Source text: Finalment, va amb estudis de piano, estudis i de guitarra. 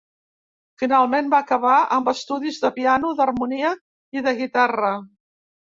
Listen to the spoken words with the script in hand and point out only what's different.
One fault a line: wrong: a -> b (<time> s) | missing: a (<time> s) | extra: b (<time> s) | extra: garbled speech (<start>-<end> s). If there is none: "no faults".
extra: acabar (1.4 s)
wrong: estudis -> d'harmonia (3.2 s)